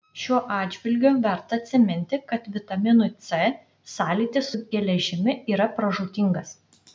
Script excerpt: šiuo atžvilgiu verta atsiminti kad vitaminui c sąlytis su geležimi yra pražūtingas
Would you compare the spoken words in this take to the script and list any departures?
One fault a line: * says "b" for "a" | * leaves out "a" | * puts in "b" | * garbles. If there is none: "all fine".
all fine